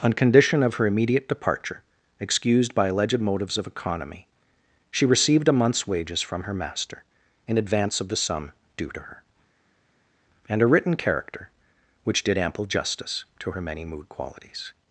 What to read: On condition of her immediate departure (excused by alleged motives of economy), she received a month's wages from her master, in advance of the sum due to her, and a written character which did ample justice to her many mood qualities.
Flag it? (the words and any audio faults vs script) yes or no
no